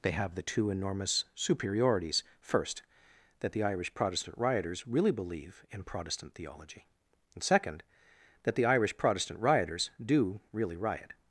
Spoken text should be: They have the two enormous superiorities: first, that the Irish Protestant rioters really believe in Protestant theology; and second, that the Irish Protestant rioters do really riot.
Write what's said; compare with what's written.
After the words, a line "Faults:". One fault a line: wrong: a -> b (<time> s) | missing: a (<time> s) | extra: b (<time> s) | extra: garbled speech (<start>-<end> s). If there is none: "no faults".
They have the two enormous superiorities: first, that the Irish Protestant rioters really believe in Protestant theology; and second, that the Irish Protestant rioters do really riot.
Faults:
no faults